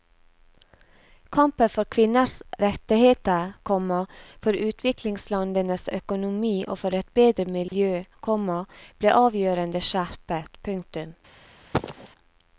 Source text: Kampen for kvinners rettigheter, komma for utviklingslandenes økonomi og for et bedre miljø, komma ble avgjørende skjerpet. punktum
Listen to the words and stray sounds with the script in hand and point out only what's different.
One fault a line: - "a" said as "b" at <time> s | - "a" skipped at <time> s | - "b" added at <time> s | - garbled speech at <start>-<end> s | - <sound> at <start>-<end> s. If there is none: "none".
- dropout at 7.7-7.7 s
- cough at 11.7-12.1 s